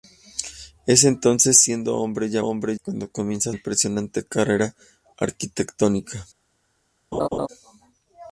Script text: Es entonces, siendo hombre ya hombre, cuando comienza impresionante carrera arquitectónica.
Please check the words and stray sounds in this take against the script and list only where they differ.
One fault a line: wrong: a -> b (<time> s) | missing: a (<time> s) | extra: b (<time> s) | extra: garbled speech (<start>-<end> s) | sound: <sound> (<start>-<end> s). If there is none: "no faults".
sound: laugh (7.1-7.5 s)